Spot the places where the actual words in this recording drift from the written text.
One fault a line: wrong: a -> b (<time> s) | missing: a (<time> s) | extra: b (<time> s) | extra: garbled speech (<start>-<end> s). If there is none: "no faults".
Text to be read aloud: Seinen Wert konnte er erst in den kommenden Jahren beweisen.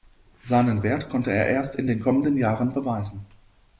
no faults